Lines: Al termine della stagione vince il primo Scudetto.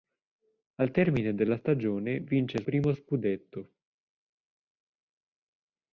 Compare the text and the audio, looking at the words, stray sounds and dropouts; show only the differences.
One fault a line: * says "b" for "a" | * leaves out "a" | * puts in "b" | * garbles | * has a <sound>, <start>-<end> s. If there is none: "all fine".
all fine